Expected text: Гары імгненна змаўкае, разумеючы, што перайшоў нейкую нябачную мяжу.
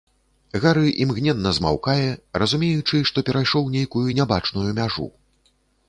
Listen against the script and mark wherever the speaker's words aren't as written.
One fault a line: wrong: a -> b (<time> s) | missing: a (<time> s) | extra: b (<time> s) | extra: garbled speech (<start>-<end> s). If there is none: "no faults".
no faults